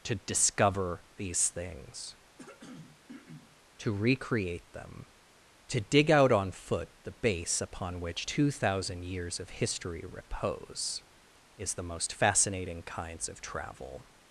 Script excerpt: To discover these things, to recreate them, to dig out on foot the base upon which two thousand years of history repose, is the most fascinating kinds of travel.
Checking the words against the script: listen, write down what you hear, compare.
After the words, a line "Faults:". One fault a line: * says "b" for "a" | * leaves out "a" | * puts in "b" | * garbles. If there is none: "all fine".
To discover these things, to recreate them, to dig out on foot the base upon which two thousand years of history repose, is the most fascinating kinds of travel.
Faults:
all fine